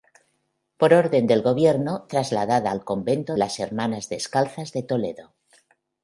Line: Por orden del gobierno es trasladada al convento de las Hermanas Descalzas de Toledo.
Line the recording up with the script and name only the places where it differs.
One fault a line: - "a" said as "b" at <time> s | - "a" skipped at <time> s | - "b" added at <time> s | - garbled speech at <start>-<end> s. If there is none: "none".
- "es" skipped at 2.1 s
- "de" skipped at 3.4 s